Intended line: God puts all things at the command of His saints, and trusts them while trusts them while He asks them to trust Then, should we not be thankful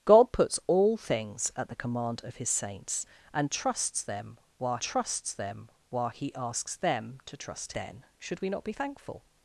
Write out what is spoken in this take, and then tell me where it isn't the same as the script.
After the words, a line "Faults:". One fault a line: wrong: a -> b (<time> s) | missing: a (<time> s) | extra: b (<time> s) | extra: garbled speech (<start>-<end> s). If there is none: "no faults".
God puts all things at the command of His saints, and trusts them while trusts them while He asks them to trust Then, should we not be thankful
Faults:
no faults